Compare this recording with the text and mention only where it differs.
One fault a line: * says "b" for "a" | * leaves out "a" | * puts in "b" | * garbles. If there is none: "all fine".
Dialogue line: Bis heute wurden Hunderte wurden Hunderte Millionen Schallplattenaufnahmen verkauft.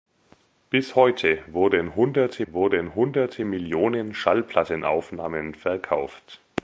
all fine